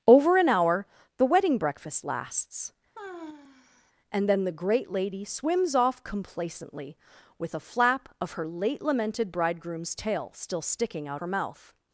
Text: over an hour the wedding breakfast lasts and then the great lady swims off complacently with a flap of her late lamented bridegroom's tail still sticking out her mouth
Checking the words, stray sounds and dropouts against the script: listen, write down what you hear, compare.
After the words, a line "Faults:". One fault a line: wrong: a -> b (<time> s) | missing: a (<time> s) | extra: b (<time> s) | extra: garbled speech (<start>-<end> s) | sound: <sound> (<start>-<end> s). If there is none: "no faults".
over an hour the wedding breakfast lasts and then the great lady swims off complacently with a flap of her late lamented bridegroom's tail still sticking out her mouth
Faults:
sound: sigh (2.9-3.9 s)